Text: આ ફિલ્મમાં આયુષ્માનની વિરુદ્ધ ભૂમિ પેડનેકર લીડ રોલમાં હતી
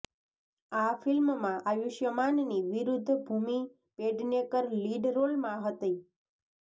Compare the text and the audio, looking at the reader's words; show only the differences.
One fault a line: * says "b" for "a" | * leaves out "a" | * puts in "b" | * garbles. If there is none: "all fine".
all fine